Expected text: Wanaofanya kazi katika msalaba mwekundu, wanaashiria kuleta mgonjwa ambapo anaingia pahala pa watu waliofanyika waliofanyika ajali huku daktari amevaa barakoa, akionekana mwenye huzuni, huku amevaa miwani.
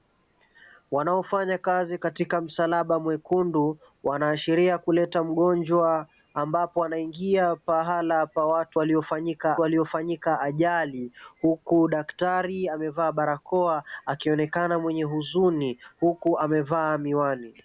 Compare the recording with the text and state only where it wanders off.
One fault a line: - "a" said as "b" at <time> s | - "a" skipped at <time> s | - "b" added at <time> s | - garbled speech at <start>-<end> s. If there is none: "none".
none